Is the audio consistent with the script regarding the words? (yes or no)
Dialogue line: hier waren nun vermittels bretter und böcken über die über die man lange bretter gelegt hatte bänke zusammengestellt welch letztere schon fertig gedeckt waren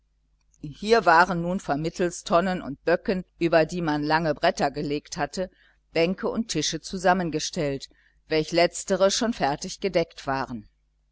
no